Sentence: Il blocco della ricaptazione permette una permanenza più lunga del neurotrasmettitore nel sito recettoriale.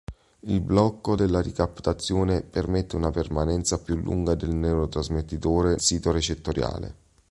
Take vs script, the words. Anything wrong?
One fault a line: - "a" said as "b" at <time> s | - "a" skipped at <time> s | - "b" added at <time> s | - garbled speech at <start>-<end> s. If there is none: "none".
- "nel" skipped at 5.8 s